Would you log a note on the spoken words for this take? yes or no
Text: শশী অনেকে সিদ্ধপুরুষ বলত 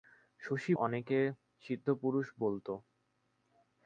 no